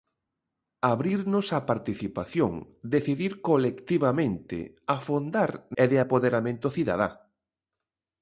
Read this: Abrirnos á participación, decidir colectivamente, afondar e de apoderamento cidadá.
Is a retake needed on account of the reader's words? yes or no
no